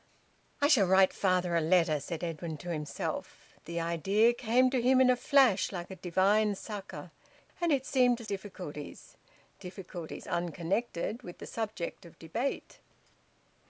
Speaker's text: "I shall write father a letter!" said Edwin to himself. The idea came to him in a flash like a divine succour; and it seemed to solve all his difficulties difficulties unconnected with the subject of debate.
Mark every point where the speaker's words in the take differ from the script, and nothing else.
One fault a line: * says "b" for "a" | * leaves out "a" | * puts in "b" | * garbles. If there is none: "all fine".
* leaves out "solve all his"